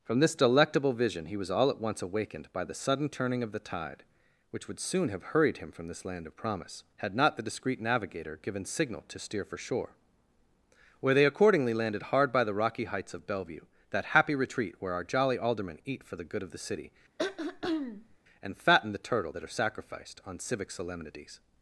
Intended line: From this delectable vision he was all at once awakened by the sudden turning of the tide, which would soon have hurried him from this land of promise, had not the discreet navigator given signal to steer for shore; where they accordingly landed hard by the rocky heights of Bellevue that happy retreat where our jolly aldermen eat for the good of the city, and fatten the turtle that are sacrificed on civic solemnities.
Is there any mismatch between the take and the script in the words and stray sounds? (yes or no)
yes